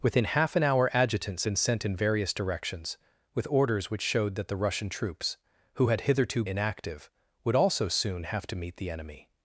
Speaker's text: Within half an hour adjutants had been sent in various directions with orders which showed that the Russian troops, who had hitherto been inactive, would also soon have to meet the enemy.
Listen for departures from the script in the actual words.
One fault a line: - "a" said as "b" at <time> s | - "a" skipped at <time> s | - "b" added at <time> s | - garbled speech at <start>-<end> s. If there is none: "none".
- "had" skipped at 1.4 s
- "been" skipped at 6.4 s